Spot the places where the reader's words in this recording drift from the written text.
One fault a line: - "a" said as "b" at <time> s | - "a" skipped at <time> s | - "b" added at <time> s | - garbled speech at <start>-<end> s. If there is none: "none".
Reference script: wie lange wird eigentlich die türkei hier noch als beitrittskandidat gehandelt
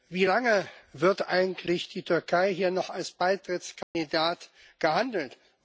none